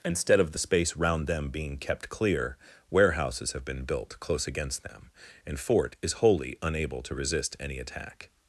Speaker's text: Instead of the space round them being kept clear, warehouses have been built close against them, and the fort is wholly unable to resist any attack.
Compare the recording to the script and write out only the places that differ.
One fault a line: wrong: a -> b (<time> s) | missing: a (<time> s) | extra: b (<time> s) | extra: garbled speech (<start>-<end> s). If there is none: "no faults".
missing: the (5.6 s)